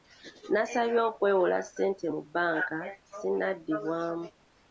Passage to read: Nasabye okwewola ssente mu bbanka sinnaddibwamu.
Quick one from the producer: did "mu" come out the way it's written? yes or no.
yes